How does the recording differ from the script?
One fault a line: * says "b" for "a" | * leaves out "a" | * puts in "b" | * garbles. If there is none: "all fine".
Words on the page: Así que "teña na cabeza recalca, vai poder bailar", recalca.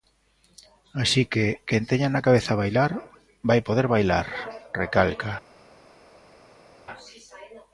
* puts in "quen"
* says "bailar" for "recalca"